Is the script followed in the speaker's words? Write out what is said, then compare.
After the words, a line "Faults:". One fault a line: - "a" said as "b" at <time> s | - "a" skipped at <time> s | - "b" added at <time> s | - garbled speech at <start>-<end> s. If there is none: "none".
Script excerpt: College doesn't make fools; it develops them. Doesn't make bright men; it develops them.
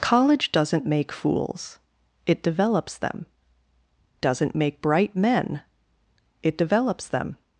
College doesn't make fools; it develops them. Doesn't make bright men; it develops them.
Faults:
none